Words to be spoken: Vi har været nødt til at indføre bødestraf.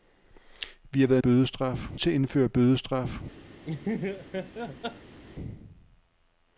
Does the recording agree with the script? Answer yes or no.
no